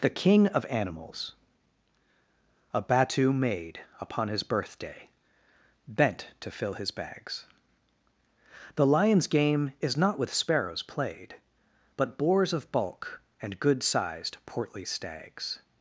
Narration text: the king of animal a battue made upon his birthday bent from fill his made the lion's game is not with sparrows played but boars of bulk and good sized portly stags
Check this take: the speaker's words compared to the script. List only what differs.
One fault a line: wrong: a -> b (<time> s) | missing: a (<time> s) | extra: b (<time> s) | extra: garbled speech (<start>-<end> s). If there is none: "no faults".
wrong: animal -> animals (0.7 s)
wrong: from -> to (6.4 s)
wrong: made -> bags (6.9 s)